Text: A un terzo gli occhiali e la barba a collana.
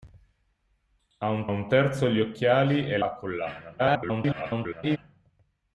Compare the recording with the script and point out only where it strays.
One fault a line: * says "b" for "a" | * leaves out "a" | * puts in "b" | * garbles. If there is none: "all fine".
* puts in "un"
* leaves out "la barba"
* garbles